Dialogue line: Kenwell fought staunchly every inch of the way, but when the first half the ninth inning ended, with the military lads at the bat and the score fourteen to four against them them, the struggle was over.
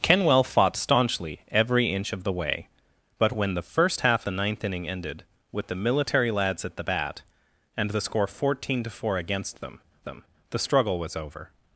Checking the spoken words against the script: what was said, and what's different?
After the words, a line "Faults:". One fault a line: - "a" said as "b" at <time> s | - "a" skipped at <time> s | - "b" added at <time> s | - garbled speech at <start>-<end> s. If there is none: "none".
Kenwell fought staunchly every inch of the way, but when the first half the ninth inning ended, with the military lads at the bat and the score fourteen to four against them them, the struggle was over.
Faults:
none